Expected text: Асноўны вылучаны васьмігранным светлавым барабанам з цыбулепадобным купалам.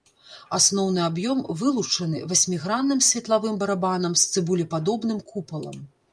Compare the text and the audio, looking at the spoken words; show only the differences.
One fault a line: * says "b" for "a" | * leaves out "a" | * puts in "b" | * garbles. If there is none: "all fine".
* puts in "аб'ём"